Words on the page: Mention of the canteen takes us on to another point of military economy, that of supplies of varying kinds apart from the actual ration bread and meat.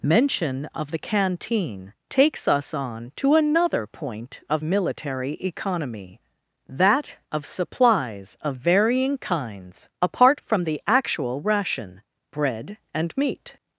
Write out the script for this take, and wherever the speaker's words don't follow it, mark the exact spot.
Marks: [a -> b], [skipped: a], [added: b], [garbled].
Mention of the canteen takes us on to another point of military economy, that of supplies of varying kinds apart from the actual ration bread and meat.